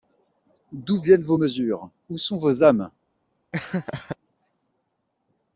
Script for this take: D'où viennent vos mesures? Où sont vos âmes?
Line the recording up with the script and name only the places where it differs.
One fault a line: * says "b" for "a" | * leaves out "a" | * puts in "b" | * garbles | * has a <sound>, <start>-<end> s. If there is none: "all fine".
* has a laugh, 3.5-4.2 s